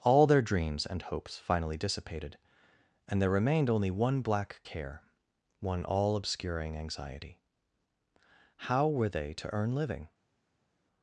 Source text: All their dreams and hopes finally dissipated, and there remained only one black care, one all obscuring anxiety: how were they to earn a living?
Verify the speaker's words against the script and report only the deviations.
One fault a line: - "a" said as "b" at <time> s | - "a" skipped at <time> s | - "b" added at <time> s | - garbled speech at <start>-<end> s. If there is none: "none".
- "a" skipped at 9.7 s